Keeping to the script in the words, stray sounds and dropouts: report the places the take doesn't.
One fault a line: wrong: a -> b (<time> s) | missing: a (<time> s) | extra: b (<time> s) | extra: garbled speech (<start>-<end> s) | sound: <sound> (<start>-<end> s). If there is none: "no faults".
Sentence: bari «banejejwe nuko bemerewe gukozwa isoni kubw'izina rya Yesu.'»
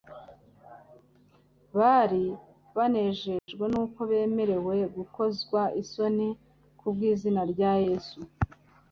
sound: dropout (3.4-3.5 s)